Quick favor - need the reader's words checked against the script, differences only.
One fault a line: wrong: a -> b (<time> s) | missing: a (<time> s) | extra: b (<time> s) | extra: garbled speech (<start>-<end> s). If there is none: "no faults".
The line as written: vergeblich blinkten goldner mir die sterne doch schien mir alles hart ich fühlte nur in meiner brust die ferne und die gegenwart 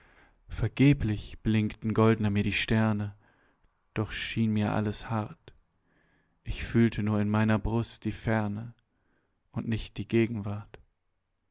extra: nicht (9.7 s)